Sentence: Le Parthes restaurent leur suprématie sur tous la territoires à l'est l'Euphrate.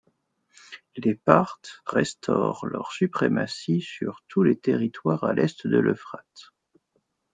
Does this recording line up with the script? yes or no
no